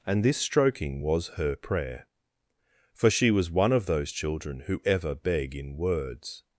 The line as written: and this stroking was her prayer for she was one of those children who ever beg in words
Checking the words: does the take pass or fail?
pass